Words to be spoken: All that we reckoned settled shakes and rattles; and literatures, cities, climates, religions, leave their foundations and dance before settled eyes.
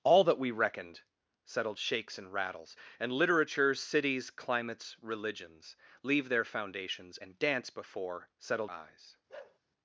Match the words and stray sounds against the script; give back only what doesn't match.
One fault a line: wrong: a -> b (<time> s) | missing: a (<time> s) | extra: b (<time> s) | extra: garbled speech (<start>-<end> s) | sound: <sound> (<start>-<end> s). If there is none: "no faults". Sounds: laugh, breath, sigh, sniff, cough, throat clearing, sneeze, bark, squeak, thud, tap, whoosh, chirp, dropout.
sound: bark (9.3-9.6 s)